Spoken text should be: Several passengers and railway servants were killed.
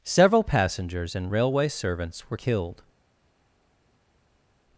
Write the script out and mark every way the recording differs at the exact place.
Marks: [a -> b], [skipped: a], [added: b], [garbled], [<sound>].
Several passengers and railway servants were killed.